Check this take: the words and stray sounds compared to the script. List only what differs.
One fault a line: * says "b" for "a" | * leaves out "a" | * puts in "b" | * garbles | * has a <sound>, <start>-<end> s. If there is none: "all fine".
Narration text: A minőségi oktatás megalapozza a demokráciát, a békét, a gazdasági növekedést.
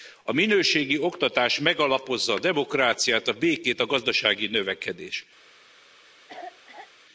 * has a cough, 6.3-6.9 s